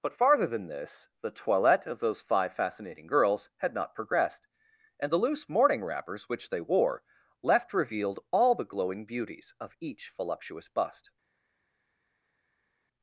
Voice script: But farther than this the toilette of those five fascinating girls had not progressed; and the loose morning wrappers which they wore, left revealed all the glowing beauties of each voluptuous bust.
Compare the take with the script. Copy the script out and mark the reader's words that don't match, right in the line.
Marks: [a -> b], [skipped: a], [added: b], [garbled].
But farther than this the toilette of those five fascinating girls had not progressed; and the loose morning wrappers which they wore, left revealed all the glowing beauties of each voluptuous bust.